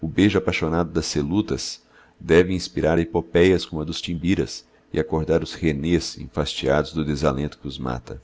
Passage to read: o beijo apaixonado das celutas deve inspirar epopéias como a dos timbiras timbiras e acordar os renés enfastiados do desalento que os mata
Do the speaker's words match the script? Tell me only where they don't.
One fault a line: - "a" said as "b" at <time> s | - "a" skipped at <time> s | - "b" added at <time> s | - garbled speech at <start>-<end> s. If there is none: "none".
- "timbiras" skipped at 4.6 s